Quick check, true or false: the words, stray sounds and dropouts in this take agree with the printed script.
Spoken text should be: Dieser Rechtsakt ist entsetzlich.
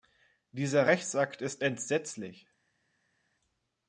true